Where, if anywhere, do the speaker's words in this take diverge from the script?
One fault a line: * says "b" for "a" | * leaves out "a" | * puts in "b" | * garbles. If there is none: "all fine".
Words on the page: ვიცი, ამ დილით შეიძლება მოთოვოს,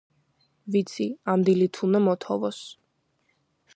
* says "უნდა" for "შეიძლება"